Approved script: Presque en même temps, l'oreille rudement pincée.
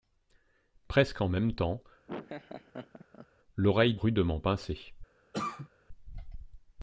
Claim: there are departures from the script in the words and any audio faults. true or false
true